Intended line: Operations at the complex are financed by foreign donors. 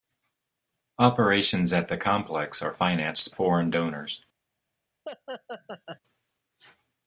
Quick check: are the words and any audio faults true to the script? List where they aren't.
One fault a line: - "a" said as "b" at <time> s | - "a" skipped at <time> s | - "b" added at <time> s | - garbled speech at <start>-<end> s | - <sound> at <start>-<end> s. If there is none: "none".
- "by" skipped at 3.3 s
- laugh at 5.0-6.0 s